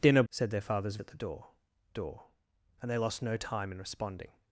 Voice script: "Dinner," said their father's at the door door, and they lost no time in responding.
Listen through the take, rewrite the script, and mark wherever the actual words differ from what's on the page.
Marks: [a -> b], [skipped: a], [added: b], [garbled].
"Dinner," said their father's at the door door, and they lost no time in responding.